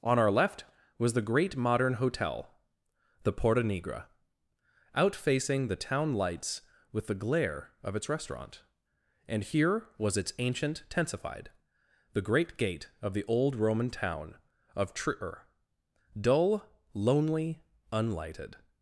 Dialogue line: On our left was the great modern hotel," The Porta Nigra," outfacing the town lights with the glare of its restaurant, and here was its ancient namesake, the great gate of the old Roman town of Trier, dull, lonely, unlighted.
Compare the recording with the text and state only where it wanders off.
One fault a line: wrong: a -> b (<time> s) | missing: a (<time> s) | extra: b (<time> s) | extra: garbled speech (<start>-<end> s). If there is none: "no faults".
wrong: namesake -> tensified (10.9 s)